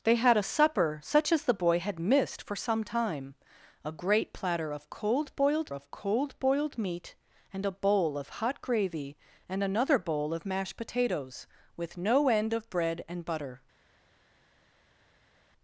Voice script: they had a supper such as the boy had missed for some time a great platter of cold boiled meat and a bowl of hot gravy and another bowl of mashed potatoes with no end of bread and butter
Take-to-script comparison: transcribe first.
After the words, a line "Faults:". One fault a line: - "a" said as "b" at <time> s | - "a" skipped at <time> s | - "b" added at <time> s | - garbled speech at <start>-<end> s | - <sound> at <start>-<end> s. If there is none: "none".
they had a supper such as the boy had missed for some time a great platter of cold boiled of cold boiled meat and a bowl of hot gravy and another bowl of mashed potatoes with no end of bread and butter
Faults:
- "of cold boiled" added at 5.7 s